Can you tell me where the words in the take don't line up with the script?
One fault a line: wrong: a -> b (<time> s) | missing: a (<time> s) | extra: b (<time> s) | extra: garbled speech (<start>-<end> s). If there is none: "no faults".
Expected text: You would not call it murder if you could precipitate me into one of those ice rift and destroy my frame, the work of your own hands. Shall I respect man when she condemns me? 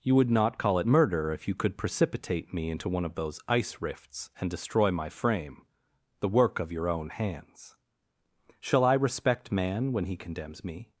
wrong: rift -> rifts (3.8 s)
wrong: she -> he (10.0 s)